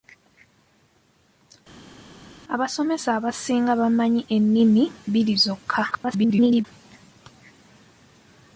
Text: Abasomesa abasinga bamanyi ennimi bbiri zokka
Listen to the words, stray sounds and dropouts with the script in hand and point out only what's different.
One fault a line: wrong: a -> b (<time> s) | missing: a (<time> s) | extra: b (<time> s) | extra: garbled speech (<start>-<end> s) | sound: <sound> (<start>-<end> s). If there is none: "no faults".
extra: garbled speech (5.9-6.6 s)